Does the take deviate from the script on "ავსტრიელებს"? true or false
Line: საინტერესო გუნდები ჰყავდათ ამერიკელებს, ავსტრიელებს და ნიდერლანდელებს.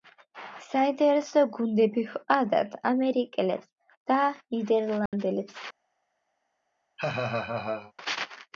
true